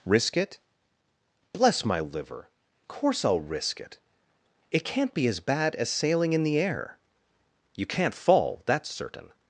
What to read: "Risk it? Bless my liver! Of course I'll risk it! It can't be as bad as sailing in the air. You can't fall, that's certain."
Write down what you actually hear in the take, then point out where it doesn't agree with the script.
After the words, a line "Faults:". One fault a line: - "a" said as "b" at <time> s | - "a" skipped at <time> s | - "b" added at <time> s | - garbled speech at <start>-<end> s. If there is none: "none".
"Risk it? Bless my liver! Course I'll risk it! It can't be as bad as sailing in the air. You can't fall, that's certain."
Faults:
- "Of" skipped at 2.5 s